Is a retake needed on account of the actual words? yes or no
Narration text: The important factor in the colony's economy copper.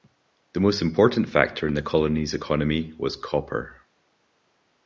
yes